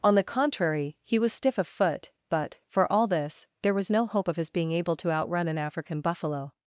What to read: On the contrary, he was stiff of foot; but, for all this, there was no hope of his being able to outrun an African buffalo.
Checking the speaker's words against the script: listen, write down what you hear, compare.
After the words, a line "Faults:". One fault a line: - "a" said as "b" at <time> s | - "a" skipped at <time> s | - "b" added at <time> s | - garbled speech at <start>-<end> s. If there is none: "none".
On the contrary, he was stiff of foot; but, for all this, there was no hope of his being able to outrun an African buffalo.
Faults:
none